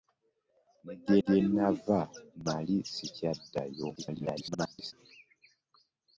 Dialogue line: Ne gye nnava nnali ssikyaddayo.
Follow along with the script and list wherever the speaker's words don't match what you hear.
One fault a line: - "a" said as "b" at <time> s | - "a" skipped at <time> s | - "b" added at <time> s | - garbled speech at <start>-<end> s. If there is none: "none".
- "gye" added at 1.2 s
- garbled speech at 4.0-4.9 s